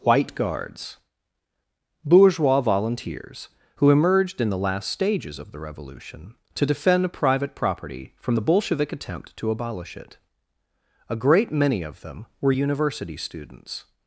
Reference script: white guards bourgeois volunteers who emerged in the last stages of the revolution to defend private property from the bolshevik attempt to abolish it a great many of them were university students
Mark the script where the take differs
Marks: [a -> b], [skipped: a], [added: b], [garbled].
white guards bourgeois volunteers who emerged in the last stages of the revolution to defend private property from the bolshevik attempt to abolish it a great many of them were university students